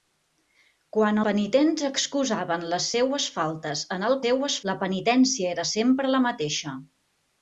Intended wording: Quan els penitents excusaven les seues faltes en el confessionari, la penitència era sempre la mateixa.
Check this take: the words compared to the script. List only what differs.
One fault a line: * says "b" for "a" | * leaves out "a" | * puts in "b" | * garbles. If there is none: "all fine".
* leaves out "els"
* says "seues" for "confessionari"